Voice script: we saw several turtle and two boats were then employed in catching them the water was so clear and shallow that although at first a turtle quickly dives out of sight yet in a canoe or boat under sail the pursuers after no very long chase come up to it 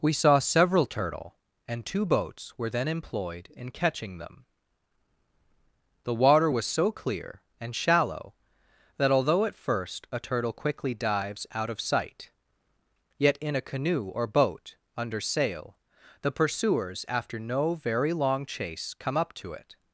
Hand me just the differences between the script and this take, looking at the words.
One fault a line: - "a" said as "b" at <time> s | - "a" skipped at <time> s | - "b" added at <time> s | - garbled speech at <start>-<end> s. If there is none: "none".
none